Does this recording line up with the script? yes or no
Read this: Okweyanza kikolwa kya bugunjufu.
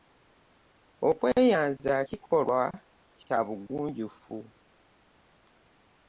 yes